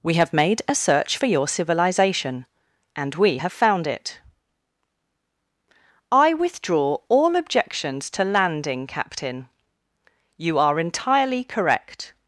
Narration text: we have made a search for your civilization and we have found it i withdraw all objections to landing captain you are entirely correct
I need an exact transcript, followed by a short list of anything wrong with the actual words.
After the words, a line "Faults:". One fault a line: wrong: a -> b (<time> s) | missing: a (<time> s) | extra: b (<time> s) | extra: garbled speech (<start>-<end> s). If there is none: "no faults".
we have made a search for your civilization and we have found it i withdraw all objections to landing captain you are entirely correct
Faults:
no faults